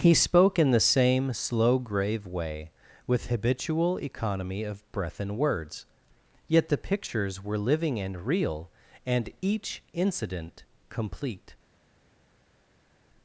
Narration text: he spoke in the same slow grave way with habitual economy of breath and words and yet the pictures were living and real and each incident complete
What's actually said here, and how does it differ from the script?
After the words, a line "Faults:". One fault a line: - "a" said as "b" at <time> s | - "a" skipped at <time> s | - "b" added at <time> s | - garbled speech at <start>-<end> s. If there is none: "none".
he spoke in the same slow grave way with habitual economy of breath and words yet the pictures were living and real and each incident complete
Faults:
- "and" skipped at 5.8 s